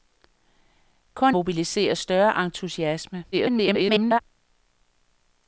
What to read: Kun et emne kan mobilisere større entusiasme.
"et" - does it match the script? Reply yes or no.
no